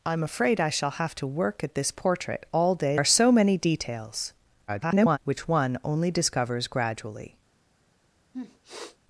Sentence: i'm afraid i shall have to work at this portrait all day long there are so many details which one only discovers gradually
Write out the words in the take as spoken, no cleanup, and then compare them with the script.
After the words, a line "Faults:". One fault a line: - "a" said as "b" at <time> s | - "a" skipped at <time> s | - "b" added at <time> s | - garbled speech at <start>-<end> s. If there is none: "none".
i'm afraid i shall have to work at this portrait all day are so many details [garbled] which one only discovers gradually
Faults:
- "long there" skipped at 3.0 s
- garbled speech at 4.7-5.2 s